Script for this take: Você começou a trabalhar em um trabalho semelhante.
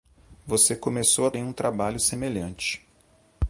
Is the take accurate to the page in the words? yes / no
no